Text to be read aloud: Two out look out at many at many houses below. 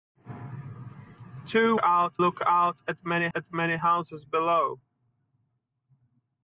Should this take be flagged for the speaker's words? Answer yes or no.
no